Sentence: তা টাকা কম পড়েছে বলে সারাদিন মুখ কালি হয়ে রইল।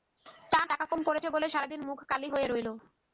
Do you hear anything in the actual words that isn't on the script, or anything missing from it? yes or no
no